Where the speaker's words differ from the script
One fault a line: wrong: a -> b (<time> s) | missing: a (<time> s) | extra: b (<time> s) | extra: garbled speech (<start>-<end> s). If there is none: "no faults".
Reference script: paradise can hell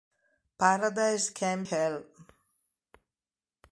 no faults